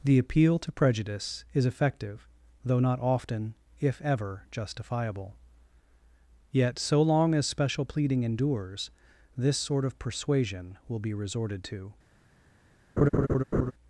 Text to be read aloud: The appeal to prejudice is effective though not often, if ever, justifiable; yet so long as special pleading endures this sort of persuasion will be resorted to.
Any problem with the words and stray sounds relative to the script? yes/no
yes